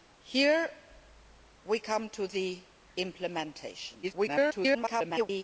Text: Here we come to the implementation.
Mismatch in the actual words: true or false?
true